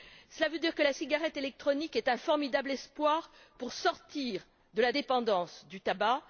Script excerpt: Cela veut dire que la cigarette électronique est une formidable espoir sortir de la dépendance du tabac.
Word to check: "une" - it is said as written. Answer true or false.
false